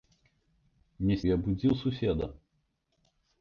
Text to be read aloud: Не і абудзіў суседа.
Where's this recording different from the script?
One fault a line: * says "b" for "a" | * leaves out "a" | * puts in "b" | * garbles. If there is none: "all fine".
all fine